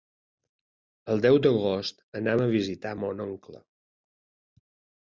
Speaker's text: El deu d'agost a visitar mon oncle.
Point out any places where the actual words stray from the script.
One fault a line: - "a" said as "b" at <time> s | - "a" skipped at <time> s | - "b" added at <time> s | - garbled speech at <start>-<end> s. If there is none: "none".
- "anam" added at 2.2 s